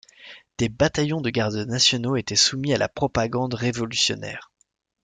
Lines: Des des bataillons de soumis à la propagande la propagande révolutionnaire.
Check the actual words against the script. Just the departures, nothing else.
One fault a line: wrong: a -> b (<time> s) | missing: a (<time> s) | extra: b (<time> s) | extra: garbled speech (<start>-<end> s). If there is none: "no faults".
missing: des (0.7 s)
extra: gardes nationaux étaient (1.3 s)
missing: la propagande (3.5 s)